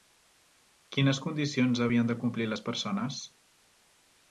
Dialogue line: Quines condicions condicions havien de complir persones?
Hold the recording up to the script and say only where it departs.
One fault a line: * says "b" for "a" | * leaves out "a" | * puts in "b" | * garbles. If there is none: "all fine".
* leaves out "condicions"
* puts in "les"